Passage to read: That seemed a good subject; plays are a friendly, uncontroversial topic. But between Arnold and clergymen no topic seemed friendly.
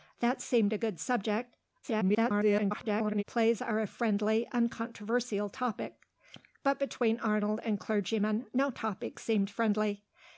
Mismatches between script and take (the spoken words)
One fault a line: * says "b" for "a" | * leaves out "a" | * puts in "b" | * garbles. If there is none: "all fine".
* garbles